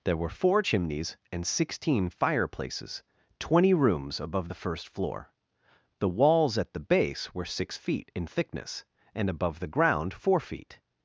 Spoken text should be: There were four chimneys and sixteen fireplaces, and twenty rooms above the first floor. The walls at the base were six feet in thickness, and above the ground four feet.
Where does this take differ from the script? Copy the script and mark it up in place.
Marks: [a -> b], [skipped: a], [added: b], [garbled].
There were four chimneys and sixteen fireplaces, [skipped: and] twenty rooms above the first floor. The walls at the base were six feet in thickness, and above the ground four feet.